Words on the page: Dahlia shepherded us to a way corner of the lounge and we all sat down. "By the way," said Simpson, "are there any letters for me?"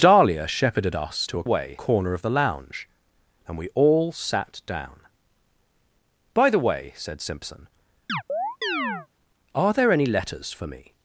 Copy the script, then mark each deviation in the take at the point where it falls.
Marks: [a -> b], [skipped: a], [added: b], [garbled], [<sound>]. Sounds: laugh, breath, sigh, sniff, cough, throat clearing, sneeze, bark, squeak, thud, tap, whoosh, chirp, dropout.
Dahlia shepherded us to a way corner of the lounge and we all sat down. "By the way," said Simpson, [chirp] "are there any letters for me?"